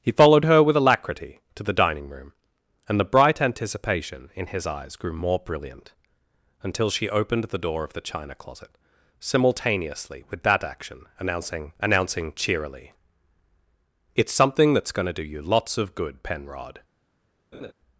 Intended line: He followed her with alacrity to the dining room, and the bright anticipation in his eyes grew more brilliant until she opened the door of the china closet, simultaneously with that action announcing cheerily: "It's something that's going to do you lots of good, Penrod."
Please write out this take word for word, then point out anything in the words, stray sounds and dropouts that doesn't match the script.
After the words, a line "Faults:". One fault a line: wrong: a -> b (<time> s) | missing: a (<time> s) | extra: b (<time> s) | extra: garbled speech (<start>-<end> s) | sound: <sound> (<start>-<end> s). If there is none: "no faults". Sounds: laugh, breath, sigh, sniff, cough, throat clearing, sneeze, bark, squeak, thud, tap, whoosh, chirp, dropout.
He followed her with alacrity to the dining room, and the bright anticipation in his eyes grew more brilliant until she opened the door of the china closet, simultaneously with that action announcing announcing cheerily: "It's something that's going to do you lots of good, Penrod."
Faults:
extra: announcing (11.8 s)
sound: laugh (17.5-17.7 s)